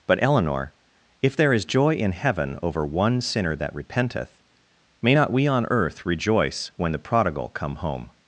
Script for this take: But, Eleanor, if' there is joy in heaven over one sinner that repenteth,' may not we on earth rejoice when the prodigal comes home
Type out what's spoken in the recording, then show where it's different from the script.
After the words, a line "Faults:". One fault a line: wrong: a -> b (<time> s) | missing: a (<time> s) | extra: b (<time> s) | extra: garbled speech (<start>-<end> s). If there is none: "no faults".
But, Eleanor, if' there is joy in heaven over one sinner that repenteth,' may not we on earth rejoice when the prodigal come home
Faults:
wrong: comes -> come (7.5 s)